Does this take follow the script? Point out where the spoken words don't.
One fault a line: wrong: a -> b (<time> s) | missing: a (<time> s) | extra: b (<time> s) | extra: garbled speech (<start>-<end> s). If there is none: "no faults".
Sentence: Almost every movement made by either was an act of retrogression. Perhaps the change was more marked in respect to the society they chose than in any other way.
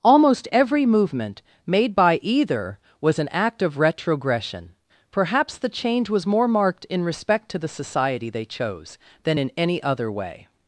no faults